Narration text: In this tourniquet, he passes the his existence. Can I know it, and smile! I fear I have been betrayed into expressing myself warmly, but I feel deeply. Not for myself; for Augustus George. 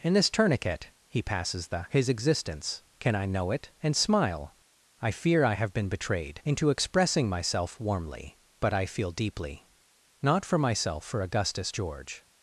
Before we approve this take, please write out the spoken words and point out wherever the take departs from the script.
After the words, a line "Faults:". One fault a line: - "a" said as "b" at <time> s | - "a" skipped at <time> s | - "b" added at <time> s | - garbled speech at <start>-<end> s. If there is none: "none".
In this tourniquet, he passes the his existence. Can I know it, and smile! I fear I have been betrayed into expressing myself warmly, but I feel deeply. Not for myself; for Augustus George.
Faults:
none